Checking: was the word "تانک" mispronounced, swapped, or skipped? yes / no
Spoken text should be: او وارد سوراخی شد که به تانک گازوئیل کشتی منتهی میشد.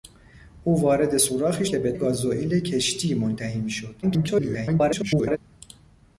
yes